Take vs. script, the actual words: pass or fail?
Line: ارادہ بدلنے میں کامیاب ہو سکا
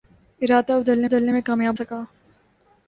fail